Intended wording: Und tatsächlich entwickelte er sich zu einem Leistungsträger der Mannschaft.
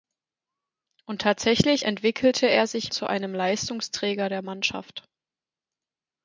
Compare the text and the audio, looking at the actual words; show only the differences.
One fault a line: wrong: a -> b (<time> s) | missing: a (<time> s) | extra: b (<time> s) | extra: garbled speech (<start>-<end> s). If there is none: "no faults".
no faults